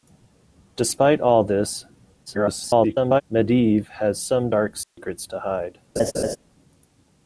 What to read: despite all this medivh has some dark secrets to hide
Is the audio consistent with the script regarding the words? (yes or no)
no